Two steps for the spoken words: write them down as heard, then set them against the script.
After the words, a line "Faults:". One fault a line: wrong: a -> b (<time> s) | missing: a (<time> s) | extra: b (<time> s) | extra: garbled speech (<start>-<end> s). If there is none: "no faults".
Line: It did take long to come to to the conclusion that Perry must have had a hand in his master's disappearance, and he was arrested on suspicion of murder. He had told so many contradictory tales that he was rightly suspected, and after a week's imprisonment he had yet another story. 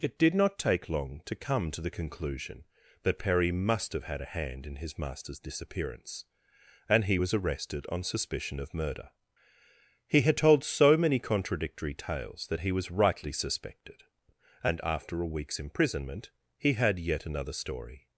It did not take long to come to the conclusion that Perry must have had a hand in his master's disappearance, and he was arrested on suspicion of murder. He had told so many contradictory tales that he was rightly suspected, and after a week's imprisonment he had yet another story.
Faults:
extra: not (0.3 s)
missing: to (1.8 s)